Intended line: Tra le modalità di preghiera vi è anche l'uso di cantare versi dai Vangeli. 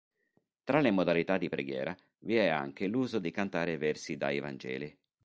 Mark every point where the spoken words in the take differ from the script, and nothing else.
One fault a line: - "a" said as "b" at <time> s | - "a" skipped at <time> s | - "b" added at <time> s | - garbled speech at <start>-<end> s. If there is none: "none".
none